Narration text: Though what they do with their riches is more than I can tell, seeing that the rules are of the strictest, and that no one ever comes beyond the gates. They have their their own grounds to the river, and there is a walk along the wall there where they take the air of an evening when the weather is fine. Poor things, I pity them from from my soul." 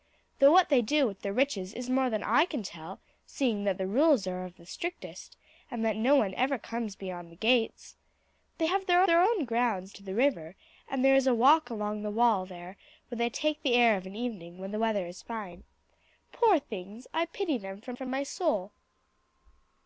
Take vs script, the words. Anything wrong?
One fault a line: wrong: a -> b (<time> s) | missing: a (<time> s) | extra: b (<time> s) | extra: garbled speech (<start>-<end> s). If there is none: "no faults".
no faults